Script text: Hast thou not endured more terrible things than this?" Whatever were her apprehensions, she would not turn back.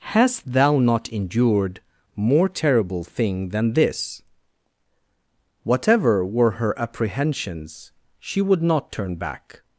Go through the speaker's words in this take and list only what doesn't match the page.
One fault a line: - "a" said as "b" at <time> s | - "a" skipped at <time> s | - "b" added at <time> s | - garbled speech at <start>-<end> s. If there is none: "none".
- "things" said as "thing" at 3.0 s